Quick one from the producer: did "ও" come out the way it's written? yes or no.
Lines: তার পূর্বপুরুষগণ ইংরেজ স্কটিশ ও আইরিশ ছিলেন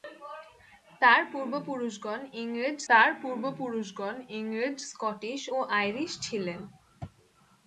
yes